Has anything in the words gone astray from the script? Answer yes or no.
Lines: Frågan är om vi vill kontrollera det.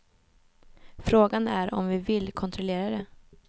no